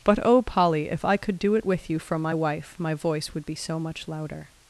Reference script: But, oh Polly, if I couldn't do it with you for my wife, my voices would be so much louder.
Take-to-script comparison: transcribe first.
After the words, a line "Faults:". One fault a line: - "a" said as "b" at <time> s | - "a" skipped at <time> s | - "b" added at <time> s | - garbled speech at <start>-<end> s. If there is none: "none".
But, oh Polly, if I could do it with you for my wife, my voice would be so much louder.
Faults:
- "couldn't" said as "could" at 1.2 s
- "voices" said as "voice" at 2.9 s